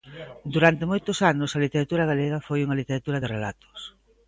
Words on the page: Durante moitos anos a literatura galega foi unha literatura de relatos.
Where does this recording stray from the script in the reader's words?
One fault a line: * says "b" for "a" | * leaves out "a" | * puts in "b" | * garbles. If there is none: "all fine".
all fine